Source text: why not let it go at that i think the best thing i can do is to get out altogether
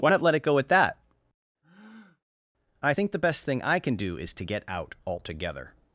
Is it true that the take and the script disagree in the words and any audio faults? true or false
true